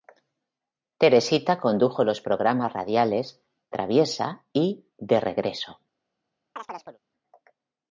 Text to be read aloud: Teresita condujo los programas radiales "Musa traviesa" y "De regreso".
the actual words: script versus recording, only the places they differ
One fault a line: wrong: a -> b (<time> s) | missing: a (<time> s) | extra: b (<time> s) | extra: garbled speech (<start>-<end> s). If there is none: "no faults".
missing: Musa (3.4 s)